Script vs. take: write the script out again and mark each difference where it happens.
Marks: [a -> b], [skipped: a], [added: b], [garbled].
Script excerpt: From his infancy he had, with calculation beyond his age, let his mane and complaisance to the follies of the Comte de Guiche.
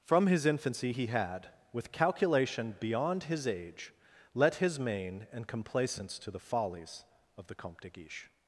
From his infancy he had, with calculation beyond his age, let his mane and complaisance to the follies of the Comte de Guiche.